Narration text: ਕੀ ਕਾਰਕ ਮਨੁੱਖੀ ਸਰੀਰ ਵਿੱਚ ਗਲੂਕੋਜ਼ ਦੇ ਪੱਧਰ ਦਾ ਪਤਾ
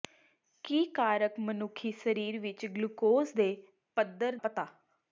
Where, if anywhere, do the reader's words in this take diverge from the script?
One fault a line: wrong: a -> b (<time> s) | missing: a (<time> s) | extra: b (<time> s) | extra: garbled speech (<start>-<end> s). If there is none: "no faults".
missing: ਦਾ (4.3 s)